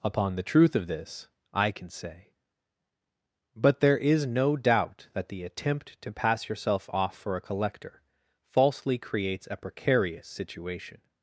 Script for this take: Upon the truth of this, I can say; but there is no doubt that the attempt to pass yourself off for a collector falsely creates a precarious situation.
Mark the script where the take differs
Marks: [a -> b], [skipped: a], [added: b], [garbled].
Upon the truth of this, I can say; but there is no doubt that the attempt to pass yourself off for a collector falsely creates a precarious situation.